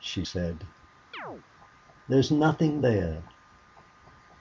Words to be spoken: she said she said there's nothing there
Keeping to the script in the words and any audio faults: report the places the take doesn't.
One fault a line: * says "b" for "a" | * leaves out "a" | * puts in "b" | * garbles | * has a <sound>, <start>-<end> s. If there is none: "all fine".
* leaves out "she said"
* has a chirp, 1.1-1.4 s